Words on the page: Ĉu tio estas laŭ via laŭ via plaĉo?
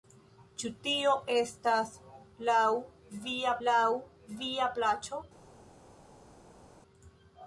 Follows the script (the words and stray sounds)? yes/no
yes